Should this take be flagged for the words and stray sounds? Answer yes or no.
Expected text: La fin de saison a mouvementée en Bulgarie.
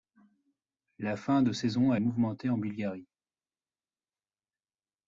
no